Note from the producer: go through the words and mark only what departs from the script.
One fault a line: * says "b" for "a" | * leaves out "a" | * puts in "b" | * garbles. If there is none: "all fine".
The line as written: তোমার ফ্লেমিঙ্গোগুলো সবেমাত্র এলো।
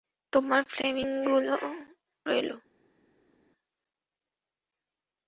* leaves out "সবেমাত্র"